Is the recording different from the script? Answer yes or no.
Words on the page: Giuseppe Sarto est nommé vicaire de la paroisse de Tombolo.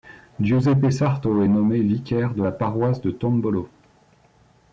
no